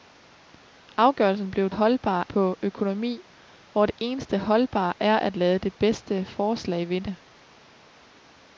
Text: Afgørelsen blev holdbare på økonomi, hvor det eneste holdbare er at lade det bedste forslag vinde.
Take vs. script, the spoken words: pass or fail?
pass